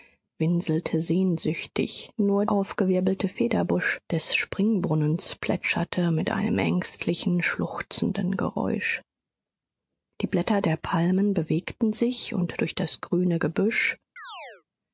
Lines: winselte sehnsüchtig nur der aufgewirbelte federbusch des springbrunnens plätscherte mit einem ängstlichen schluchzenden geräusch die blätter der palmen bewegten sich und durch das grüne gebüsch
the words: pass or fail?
fail